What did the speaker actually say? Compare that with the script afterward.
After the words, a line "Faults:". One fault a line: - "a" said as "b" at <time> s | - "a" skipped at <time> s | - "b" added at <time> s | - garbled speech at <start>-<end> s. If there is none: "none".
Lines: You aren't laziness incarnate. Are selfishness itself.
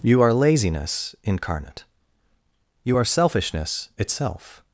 You are laziness incarnate. You are selfishness itself.
Faults:
- "aren't" said as "are" at 0.2 s
- "You" added at 2.8 s